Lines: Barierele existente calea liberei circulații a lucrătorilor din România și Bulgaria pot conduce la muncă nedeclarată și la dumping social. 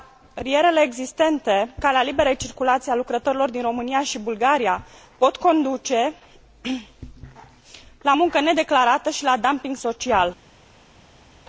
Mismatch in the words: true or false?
false